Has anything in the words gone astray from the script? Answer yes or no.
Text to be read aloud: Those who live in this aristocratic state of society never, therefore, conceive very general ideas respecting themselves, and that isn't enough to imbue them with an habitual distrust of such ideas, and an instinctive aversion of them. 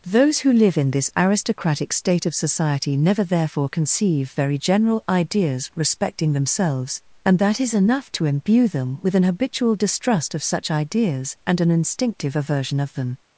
yes